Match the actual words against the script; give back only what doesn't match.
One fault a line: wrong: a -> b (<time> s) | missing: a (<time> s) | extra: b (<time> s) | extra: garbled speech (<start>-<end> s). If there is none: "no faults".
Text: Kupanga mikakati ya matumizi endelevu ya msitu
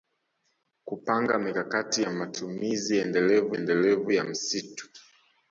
extra: endelevu (3.5 s)